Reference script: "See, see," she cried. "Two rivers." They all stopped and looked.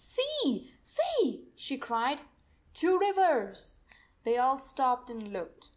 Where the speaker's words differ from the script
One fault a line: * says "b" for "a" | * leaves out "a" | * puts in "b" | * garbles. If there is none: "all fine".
all fine